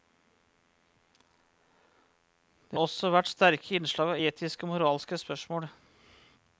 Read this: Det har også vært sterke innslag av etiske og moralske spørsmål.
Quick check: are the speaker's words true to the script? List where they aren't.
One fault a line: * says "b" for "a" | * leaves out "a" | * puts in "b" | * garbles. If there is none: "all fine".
* leaves out "har"